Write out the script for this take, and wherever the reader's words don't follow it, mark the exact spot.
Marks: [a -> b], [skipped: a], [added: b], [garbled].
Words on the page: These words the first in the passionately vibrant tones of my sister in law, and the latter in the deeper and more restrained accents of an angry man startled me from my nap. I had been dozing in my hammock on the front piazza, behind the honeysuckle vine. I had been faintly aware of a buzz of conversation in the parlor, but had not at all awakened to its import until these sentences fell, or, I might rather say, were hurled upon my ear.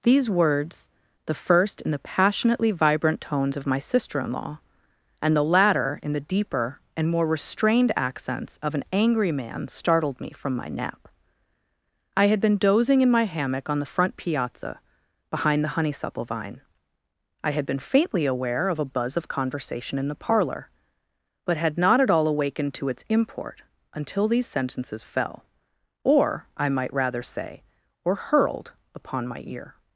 These words the first in the passionately vibrant tones of my sister in law, and the latter in the deeper and more restrained accents of an angry man startled me from my nap. I had been dozing in my hammock on the front piazza, behind the honeysuckle vine. I had been faintly aware of a buzz of conversation in the parlor, but had not at all awakened to its import until these sentences fell, or, I might rather say, were hurled upon my ear.